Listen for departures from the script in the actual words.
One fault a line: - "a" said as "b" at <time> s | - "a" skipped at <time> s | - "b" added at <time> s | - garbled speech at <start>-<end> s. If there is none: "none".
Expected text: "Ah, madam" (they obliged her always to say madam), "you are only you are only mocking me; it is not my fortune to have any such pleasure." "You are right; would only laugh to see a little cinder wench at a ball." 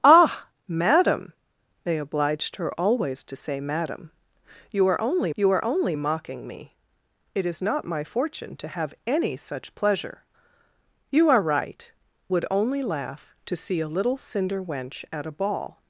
none